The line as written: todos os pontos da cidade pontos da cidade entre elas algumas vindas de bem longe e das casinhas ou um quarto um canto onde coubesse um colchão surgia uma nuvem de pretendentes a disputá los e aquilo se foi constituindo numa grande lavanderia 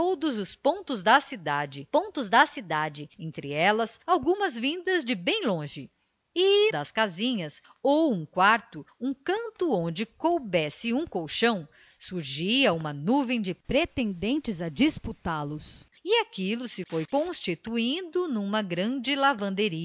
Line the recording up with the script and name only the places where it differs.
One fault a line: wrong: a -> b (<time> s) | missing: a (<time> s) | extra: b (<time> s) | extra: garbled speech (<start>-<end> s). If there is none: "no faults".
no faults